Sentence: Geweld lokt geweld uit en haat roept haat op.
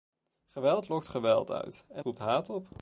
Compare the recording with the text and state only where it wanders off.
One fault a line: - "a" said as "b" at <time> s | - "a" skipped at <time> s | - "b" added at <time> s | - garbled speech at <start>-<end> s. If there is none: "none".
- "haat" skipped at 2.0 s